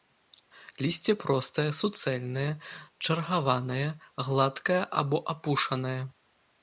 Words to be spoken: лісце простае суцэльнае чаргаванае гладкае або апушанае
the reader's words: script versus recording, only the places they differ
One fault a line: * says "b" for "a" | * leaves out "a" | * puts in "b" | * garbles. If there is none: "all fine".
all fine